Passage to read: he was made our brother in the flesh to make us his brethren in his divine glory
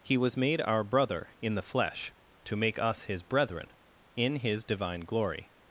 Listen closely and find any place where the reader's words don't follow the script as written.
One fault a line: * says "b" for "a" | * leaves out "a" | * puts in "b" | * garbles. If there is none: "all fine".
all fine